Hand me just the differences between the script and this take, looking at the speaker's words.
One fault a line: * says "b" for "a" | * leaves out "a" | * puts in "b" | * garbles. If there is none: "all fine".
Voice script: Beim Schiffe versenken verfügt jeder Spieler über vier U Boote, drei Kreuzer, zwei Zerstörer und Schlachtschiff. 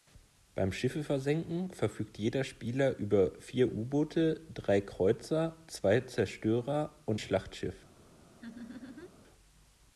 all fine